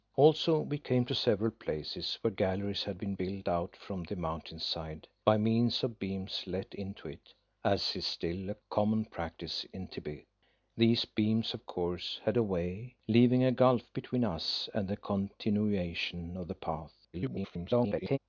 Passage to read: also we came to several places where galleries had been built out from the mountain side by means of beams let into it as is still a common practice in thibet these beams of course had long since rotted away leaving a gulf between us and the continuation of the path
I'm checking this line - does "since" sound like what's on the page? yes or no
no